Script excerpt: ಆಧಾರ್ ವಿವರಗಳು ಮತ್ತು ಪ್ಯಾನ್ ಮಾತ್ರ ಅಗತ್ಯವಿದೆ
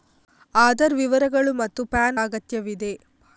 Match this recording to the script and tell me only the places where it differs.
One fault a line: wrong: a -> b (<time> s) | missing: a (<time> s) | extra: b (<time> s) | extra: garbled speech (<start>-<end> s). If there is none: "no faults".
missing: ಮಾತ್ರ (2.2 s)